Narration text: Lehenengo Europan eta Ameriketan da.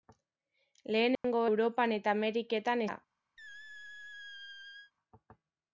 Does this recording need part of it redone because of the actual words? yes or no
no